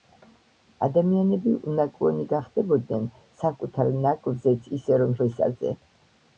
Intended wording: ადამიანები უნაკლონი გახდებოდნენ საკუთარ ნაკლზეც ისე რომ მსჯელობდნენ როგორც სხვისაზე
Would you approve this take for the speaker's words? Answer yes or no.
no